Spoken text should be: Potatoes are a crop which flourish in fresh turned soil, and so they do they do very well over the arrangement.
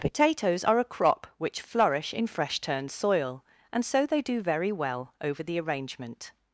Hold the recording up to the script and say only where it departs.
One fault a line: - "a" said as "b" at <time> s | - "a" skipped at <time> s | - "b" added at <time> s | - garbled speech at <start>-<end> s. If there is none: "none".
- "they do" skipped at 4.4 s